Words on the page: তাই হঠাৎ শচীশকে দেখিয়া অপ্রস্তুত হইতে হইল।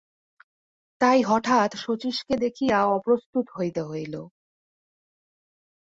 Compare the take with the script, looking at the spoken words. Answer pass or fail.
pass